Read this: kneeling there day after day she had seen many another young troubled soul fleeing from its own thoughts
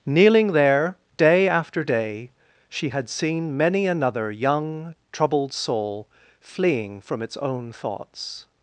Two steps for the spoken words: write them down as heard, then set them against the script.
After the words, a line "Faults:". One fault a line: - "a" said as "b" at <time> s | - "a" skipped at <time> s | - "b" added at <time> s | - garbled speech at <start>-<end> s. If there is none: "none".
kneeling there day after day she had seen many another young troubled soul fleeing from its own thoughts
Faults:
none